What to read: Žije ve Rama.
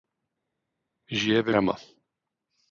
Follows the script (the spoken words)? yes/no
yes